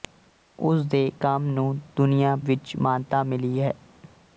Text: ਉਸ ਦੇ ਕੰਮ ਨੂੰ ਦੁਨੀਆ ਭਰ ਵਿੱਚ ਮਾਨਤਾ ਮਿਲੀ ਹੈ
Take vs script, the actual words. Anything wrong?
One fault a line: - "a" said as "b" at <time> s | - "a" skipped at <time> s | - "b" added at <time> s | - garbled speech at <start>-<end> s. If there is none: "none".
- "ਭਰ" skipped at 2.3 s